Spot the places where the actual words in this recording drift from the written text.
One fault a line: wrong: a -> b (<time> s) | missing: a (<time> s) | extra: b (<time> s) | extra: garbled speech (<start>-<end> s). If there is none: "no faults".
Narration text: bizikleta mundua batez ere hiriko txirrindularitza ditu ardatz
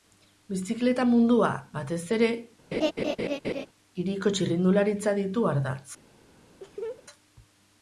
no faults